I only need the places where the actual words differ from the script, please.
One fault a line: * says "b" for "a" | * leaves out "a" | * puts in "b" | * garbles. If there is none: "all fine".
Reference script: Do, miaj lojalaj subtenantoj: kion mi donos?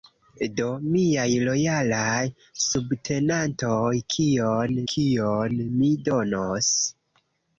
* puts in "kion"